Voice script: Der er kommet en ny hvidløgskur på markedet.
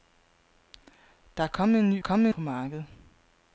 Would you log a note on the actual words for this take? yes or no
yes